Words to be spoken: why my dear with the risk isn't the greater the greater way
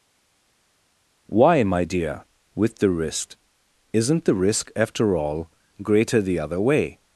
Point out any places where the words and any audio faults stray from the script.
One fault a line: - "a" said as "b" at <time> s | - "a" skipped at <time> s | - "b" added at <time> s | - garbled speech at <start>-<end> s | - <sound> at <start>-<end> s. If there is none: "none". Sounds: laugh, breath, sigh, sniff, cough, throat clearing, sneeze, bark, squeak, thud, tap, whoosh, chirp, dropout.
- "risk after all" added at 4.3 s
- "greater" said as "other" at 6.4 s